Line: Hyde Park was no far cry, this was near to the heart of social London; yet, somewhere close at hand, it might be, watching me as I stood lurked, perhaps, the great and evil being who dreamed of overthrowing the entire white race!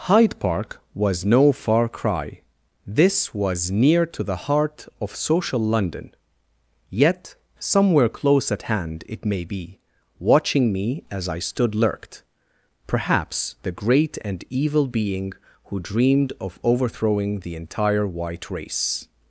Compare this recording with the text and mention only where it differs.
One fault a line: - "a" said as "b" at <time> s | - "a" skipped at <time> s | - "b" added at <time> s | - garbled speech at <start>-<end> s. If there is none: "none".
- "might" said as "may" at 9.2 s